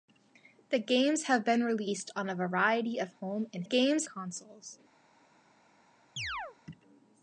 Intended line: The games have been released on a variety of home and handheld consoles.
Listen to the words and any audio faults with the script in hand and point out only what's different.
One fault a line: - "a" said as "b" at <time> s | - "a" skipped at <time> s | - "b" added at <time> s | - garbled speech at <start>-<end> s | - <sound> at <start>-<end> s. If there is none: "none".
- "handheld" said as "games" at 3.6 s
- chirp at 6.2-6.6 s